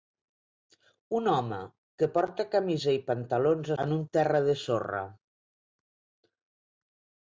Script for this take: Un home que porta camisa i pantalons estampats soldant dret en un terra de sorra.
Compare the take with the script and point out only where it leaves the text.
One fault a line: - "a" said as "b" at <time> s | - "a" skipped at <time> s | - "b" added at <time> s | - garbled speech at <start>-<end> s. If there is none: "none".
- "estampats soldant dret" skipped at 3.7 s